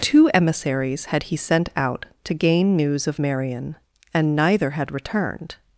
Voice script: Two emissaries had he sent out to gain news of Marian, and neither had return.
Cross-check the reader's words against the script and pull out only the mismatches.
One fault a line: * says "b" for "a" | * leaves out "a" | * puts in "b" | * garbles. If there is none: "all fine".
* says "returned" for "return"